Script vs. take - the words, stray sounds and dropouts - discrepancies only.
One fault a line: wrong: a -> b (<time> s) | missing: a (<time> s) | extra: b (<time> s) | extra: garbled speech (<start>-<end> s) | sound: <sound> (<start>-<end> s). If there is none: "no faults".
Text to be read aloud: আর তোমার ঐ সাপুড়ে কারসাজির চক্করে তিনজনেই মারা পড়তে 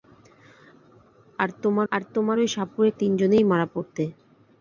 extra: আর তোমার (1.9 s)
missing: কারসাজির চক্করে (2.9 s)